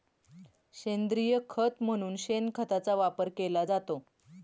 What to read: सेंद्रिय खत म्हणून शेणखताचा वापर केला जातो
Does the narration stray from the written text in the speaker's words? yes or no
no